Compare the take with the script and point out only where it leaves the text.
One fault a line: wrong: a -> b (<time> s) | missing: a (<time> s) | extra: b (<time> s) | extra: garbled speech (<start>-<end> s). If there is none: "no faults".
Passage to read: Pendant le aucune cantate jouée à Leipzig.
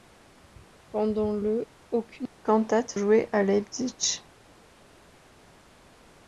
no faults